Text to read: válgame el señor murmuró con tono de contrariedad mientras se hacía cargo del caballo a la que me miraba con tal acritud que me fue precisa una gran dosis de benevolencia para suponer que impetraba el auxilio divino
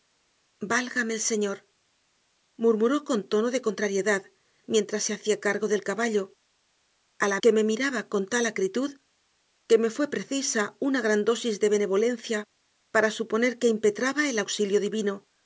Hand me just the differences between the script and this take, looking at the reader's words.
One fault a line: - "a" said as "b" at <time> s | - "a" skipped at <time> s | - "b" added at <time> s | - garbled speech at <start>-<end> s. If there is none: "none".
none